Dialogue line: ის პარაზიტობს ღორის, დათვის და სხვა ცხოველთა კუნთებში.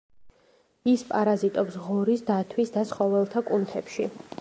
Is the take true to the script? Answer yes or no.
no